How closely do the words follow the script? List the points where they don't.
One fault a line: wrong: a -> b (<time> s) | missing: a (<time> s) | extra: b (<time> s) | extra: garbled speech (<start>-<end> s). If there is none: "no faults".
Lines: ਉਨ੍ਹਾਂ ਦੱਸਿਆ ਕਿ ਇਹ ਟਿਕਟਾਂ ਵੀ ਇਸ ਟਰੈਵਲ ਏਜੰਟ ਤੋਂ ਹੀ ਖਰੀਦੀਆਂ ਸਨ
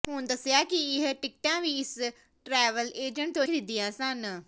missing: ਹੀ (3.4 s)